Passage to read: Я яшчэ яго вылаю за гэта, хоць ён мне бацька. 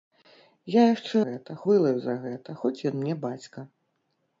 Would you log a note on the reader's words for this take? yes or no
yes